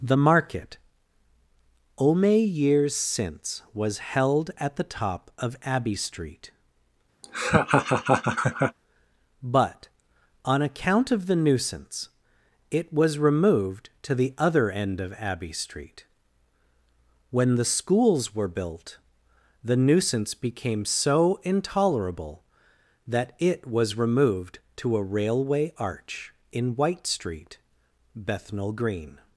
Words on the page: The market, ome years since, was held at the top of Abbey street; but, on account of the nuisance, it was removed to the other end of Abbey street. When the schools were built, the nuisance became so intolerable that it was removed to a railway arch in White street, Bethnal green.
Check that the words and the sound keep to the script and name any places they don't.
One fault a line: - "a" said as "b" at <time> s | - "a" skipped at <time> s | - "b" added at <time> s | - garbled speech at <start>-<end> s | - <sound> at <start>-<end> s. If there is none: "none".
- laugh at 7.2-8.8 s